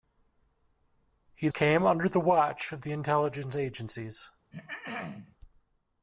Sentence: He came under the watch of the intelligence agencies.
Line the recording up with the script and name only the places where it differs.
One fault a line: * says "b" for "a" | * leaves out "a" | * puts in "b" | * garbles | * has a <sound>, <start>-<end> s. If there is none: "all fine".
* has a throat clearing, 4.5-5.4 s